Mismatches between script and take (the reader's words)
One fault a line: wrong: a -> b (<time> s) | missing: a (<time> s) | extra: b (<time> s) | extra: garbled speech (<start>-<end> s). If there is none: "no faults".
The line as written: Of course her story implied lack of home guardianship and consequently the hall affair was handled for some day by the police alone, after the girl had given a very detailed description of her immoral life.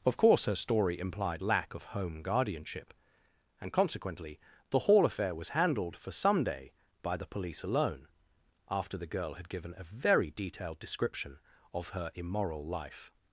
no faults